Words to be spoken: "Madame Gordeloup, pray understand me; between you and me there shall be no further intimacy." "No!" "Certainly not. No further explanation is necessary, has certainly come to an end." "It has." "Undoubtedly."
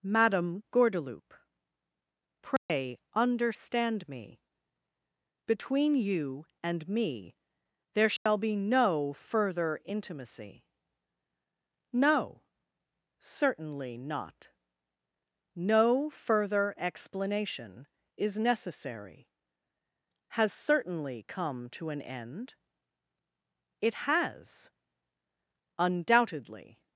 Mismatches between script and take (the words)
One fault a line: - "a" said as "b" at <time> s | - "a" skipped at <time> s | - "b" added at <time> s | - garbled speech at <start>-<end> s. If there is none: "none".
none